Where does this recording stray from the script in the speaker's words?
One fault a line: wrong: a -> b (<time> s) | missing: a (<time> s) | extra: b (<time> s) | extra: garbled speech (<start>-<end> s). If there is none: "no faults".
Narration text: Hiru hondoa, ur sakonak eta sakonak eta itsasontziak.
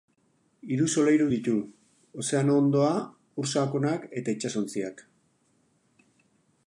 extra: solairu ditu ozeano (0.9 s)
missing: sakonak eta (4.4 s)